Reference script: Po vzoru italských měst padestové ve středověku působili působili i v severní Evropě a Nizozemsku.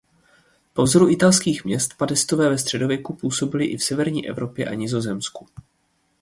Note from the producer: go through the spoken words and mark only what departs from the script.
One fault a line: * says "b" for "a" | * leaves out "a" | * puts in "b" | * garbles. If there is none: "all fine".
* leaves out "působili"